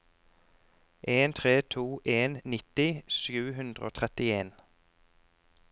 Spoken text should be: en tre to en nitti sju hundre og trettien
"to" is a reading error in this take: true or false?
false